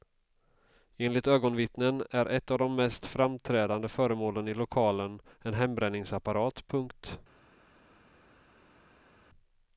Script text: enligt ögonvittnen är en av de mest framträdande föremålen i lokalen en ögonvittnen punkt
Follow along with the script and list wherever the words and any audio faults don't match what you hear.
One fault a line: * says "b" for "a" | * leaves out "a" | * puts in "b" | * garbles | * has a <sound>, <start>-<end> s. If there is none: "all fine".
* says "ett" for "en"
* says "hembränningsapparat" for "ögonvittnen"